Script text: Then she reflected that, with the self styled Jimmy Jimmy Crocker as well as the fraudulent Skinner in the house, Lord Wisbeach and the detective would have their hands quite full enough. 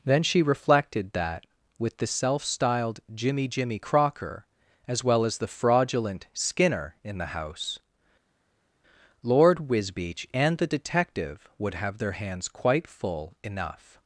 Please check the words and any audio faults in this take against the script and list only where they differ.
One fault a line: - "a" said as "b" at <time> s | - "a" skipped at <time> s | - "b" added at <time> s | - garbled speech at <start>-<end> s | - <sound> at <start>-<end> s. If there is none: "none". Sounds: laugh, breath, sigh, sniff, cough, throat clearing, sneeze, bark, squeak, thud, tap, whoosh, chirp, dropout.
none